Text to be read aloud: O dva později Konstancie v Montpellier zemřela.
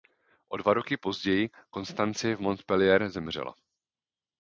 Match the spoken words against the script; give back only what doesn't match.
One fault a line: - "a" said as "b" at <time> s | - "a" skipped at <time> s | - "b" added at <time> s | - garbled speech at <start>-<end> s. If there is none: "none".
- "roky" added at 0.7 s